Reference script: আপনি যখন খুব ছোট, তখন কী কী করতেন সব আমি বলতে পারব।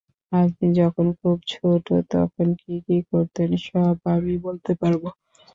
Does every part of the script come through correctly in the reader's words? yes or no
yes